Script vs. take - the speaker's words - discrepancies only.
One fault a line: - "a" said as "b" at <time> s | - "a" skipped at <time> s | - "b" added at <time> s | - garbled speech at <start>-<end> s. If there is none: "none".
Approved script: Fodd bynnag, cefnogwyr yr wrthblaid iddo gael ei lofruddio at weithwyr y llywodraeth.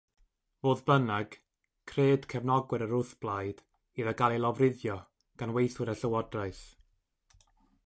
- "cred" added at 1.9 s
- "at" said as "gan" at 5.4 s